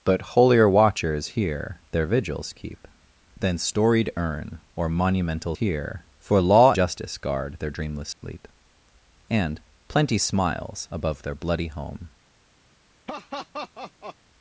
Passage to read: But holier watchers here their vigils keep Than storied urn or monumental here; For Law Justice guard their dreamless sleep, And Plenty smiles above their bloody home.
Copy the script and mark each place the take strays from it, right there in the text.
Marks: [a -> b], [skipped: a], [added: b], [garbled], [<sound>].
But holier watchers here their vigils keep Than storied urn or monumental here; For Law Justice guard their dreamless sleep, [dropout] And Plenty smiles above their bloody home. [laugh]